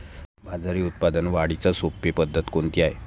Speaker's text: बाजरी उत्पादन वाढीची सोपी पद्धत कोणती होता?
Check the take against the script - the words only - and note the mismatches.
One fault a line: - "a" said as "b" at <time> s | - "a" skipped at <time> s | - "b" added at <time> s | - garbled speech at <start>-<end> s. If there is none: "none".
- "होता" said as "आहे" at 2.8 s